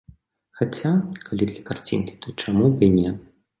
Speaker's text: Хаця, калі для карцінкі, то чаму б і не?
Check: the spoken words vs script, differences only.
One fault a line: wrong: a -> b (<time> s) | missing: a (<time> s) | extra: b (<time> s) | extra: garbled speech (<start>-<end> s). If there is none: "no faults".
no faults